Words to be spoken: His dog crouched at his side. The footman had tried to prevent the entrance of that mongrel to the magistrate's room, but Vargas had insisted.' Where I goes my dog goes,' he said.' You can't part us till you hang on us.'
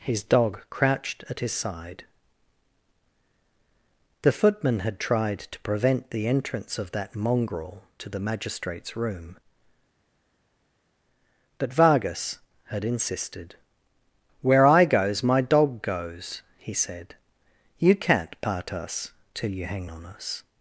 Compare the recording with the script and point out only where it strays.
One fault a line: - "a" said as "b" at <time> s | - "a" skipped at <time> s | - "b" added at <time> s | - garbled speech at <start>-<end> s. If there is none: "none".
none